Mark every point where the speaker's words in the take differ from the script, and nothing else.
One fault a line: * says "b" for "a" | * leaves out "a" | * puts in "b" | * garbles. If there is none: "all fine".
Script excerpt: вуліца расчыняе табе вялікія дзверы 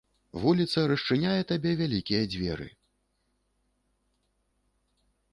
all fine